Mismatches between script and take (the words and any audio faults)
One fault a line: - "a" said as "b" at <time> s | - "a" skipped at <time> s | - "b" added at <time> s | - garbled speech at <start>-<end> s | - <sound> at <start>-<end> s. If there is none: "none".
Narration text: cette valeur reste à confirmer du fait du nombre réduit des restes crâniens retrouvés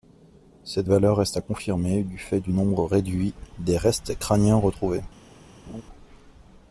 - laugh at 5.7-5.8 s